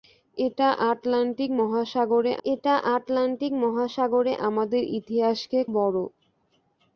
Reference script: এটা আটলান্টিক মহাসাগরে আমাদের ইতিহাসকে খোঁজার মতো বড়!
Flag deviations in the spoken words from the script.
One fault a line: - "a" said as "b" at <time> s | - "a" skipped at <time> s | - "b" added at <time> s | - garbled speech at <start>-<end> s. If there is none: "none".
- "এটা আটলান্টিক মহাসাগরে" added at 2.4 s
- "খোঁজার মতো" skipped at 5.6 s